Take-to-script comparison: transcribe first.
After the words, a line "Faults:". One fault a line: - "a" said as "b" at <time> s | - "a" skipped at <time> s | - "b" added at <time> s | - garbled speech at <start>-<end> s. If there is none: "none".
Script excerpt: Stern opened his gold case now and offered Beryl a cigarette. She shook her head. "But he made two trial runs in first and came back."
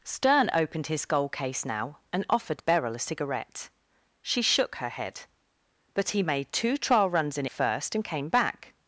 Stern opened his gold case now and offered Beryl a cigarette. She shook her head. "But he made two trial runs in first and came back."
Faults:
none